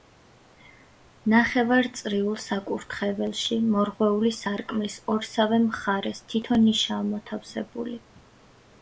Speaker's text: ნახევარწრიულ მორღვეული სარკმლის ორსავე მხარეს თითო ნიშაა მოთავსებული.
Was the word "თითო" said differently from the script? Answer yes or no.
no